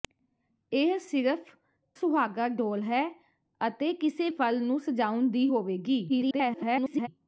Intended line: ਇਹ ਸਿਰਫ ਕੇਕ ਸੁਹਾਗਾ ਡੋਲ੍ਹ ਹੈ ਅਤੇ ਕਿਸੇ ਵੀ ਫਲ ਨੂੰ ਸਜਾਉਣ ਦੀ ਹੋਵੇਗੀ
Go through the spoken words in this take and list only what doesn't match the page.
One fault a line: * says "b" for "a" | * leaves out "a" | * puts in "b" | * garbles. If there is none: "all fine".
* leaves out "ਕੇਕ"
* leaves out "ਵੀ"
* garbles